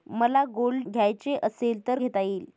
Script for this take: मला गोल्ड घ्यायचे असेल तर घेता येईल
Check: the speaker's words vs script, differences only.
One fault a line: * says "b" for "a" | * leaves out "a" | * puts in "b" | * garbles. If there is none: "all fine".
all fine